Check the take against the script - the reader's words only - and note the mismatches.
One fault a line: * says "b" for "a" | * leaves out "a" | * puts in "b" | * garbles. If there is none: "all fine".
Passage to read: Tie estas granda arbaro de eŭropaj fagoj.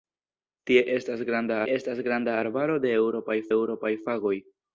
* puts in "estas granda"
* puts in "eŭropaj"